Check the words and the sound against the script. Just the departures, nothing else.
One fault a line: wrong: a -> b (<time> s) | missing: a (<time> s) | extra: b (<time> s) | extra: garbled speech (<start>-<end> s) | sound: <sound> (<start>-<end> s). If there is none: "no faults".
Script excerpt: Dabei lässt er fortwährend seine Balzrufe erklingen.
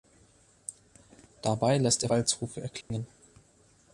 missing: fortwährend seine (2.1 s)
sound: dropout (2.8-2.9 s)